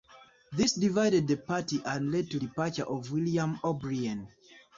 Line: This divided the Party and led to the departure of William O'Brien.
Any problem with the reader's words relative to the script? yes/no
yes